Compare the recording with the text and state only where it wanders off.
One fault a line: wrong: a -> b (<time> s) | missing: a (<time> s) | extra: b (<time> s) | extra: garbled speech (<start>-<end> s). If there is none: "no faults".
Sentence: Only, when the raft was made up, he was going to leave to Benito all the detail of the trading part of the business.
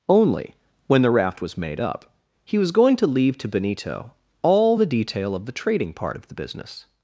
no faults